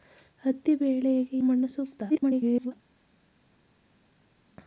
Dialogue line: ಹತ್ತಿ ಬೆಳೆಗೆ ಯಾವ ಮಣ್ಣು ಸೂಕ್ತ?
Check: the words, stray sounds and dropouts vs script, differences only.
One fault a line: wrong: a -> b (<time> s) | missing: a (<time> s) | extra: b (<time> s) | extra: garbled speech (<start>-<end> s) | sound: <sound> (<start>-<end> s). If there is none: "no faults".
missing: ಯಾವ (1.4 s)
extra: garbled speech (2.1-2.7 s)